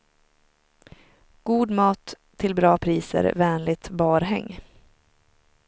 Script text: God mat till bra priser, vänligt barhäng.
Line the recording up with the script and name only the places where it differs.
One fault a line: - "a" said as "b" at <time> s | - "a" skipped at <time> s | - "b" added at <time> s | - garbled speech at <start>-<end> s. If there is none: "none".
none